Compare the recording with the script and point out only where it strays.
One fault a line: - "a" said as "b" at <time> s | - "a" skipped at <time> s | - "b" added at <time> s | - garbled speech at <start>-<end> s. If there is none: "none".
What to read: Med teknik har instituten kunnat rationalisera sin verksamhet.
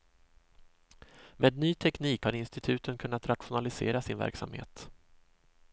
- "ny" added at 1.6 s